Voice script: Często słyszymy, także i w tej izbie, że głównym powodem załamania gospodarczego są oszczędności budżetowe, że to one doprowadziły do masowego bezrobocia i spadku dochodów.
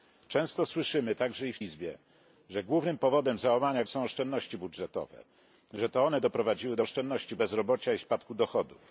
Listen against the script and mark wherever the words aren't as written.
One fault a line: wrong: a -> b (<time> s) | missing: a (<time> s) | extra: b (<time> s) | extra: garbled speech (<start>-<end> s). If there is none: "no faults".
missing: tej (1.6 s)
missing: gospodarczego (3.8 s)
wrong: masowego -> oszczędności (6.8 s)